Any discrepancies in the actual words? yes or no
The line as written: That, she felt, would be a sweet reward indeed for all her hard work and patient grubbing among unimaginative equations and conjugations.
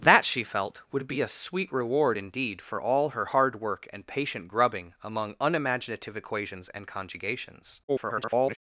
yes